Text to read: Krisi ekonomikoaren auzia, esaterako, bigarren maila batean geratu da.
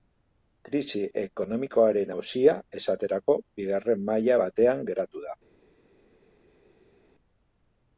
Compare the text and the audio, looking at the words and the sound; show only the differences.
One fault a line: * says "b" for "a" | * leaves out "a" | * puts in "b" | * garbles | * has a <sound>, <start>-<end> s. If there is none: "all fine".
all fine